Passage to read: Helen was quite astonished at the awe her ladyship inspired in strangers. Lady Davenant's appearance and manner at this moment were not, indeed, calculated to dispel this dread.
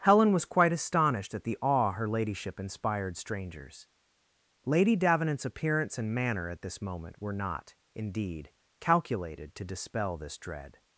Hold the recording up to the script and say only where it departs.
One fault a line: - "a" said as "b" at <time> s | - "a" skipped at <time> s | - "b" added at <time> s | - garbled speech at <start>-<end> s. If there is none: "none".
- "in" skipped at 3.2 s